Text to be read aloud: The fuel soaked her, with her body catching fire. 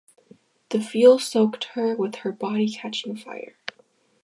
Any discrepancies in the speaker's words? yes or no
no